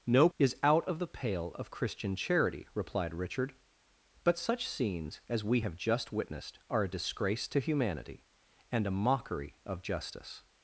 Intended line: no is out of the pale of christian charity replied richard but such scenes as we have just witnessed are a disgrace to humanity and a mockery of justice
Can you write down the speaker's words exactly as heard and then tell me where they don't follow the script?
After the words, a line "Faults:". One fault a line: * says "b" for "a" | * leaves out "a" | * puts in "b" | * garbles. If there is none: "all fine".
no is out of the pale of christian charity replied richard but such scenes as we have just witnessed are a disgrace to humanity and a mockery of justice
Faults:
all fine